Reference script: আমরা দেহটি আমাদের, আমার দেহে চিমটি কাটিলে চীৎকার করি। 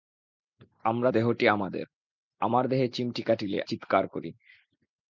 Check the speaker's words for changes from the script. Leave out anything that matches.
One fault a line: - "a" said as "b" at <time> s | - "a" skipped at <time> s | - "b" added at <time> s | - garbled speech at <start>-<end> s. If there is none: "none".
none